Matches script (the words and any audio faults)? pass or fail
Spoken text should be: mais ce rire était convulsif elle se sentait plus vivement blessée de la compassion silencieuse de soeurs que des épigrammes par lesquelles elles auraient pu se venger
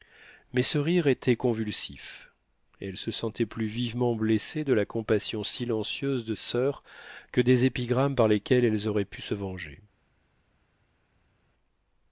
pass